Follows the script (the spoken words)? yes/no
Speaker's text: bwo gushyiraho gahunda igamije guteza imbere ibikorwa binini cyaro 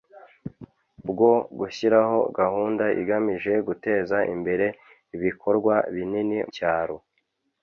yes